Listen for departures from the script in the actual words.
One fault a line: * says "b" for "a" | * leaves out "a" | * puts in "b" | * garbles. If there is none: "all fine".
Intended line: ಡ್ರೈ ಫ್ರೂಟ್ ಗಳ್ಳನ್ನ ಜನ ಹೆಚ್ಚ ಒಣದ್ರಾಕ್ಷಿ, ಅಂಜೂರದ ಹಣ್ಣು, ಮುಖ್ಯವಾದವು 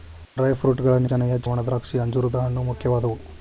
all fine